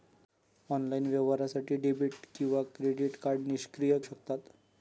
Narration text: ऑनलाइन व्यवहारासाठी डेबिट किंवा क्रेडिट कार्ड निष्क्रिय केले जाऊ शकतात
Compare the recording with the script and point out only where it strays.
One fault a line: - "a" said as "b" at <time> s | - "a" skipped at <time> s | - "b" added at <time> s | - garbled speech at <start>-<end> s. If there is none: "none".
- "केले जाऊ" skipped at 4.0 s